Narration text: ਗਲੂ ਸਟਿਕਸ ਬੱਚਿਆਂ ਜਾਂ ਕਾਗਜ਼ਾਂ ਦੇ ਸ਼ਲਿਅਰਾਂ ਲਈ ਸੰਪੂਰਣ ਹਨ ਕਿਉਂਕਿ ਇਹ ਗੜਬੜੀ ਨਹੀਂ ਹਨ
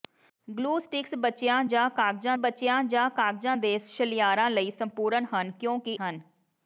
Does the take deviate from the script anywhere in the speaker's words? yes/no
yes